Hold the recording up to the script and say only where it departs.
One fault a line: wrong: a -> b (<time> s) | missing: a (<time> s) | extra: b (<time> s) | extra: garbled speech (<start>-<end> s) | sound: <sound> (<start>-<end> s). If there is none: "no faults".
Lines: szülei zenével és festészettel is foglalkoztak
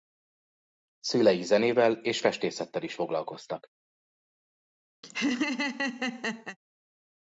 sound: laugh (5.0-6.6 s)